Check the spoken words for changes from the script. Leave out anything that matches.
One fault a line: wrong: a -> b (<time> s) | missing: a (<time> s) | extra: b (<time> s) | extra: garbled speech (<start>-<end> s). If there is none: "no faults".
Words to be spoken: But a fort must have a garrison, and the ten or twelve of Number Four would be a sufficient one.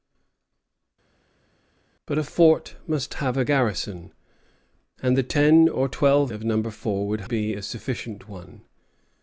no faults